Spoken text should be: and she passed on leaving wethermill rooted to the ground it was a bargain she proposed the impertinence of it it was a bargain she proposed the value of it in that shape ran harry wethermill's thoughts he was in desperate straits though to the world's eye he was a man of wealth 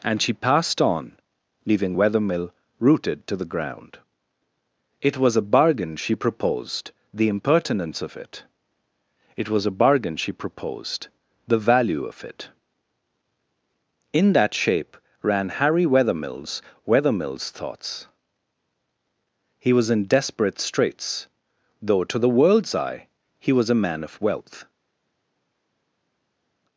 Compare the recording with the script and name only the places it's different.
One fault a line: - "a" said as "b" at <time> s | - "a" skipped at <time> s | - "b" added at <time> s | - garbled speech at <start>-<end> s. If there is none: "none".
- "wethermill's" added at 16.9 s